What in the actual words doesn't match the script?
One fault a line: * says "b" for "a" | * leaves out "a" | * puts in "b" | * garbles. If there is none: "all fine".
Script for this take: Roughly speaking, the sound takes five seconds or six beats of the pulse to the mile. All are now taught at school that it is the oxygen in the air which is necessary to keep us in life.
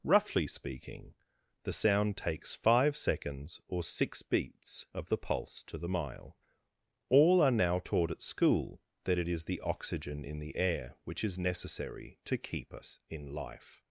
all fine